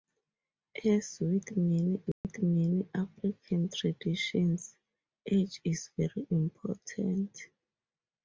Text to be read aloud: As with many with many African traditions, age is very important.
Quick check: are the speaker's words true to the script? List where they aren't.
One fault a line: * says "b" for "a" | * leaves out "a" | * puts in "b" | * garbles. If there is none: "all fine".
all fine